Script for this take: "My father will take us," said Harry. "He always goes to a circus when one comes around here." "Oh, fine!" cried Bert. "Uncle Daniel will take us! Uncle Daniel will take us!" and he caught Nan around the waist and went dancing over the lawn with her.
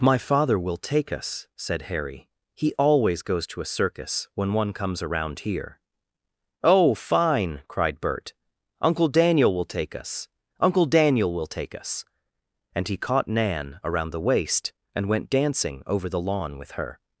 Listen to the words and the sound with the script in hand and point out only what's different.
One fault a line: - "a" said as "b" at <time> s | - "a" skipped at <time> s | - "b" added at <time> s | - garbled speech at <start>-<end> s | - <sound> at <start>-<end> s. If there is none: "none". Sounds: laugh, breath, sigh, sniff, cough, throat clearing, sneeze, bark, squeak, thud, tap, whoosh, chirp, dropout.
none